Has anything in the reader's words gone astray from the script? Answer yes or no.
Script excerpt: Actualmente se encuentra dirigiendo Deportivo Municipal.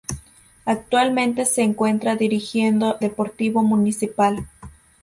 no